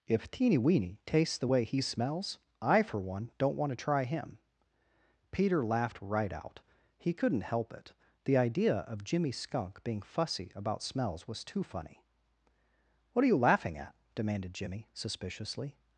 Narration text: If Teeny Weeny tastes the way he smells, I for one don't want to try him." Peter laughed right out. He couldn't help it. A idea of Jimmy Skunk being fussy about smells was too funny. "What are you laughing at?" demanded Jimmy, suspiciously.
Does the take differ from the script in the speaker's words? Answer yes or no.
yes